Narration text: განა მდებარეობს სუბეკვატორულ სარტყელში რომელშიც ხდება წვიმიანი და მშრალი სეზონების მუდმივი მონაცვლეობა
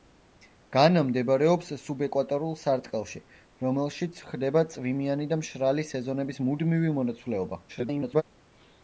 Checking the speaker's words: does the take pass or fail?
fail